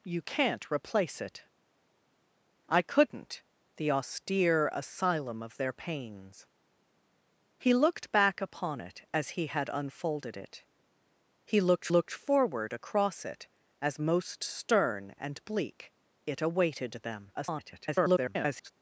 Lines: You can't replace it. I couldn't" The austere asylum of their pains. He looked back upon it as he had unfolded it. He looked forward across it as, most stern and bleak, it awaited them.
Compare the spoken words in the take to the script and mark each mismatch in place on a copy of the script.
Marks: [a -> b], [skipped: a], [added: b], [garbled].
You can't replace it. I couldn't" The austere asylum of their pains. He looked back upon it as he had unfolded it. He looked [added: looked] forward across it as, most stern and bleak, it awaited them. [garbled]